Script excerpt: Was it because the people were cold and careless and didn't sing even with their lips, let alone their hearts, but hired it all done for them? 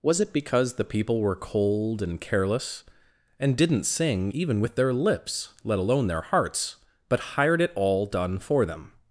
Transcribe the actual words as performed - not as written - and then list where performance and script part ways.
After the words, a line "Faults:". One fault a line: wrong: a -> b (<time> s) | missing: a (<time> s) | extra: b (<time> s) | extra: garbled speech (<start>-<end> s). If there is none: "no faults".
Was it because the people were cold and careless and didn't sing even with their lips, let alone their hearts, but hired it all done for them?
Faults:
no faults